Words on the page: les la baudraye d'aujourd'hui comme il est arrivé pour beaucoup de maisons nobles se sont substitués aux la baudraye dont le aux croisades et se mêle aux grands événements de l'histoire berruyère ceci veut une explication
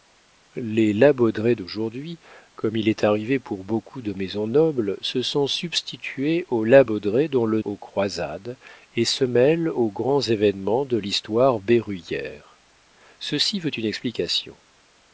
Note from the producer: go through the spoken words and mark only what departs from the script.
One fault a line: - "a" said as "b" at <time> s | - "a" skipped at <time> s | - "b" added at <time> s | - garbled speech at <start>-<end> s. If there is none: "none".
none